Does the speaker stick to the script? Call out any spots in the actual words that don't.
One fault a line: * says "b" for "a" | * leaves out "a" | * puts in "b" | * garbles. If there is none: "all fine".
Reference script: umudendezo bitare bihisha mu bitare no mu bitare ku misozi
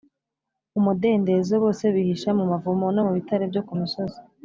* says "bose" for "bitare"
* says "mavumo" for "bitare"
* puts in "byo"